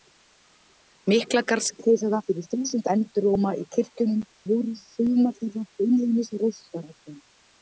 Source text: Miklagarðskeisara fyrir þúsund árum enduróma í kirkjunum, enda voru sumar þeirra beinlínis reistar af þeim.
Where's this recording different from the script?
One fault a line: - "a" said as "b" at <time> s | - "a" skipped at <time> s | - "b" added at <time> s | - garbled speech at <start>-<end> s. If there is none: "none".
- "árum" skipped at 2.9 s
- "enda" skipped at 4.2 s